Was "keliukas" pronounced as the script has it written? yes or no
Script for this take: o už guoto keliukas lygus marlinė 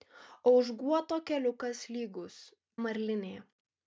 yes